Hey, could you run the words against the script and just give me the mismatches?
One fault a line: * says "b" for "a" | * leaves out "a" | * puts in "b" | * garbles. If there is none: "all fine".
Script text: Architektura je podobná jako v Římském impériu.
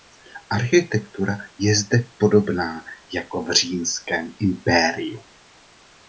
* puts in "zde"